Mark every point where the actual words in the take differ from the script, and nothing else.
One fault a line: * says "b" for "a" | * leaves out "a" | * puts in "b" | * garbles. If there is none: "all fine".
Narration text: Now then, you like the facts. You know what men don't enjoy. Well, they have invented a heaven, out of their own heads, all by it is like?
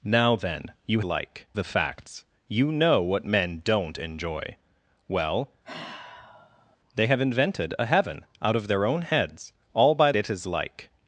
all fine